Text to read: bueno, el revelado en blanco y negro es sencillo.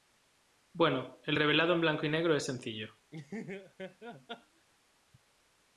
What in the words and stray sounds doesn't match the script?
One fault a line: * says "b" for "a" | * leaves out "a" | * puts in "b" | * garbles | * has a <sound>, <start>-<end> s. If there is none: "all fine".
* has a laugh, 3.1-4.7 s